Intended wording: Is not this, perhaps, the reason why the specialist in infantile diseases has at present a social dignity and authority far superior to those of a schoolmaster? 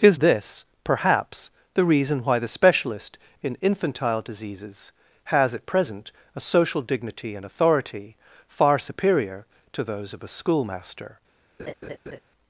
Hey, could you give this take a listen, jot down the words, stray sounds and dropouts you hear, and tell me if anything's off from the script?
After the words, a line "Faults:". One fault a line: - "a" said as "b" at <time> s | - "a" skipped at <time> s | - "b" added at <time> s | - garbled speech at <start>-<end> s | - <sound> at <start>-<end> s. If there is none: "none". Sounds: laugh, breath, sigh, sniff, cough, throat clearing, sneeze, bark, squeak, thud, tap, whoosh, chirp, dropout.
Is this, perhaps, the reason why the specialist in infantile diseases has at present a social dignity and authority far superior to those of a schoolmaster?
Faults:
- "not" skipped at 0.2 s
- laugh at 11.6-12.2 s